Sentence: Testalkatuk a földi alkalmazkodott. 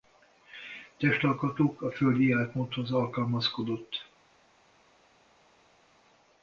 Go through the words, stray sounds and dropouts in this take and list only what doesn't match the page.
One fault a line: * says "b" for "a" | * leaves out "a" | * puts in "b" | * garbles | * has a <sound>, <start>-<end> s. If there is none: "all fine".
* puts in "életmódhoz"